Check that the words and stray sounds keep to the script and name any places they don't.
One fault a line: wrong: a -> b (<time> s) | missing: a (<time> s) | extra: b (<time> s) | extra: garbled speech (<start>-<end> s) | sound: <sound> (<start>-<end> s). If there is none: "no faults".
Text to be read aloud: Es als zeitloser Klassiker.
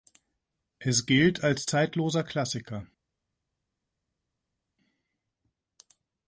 extra: gilt (1.0 s)